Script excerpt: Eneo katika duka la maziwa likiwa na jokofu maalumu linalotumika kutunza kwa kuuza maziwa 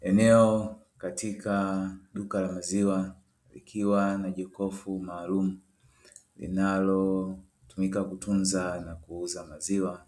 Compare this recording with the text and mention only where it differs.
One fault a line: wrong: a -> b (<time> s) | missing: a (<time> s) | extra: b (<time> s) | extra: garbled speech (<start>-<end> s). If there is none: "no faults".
wrong: kwa -> na (8.8 s)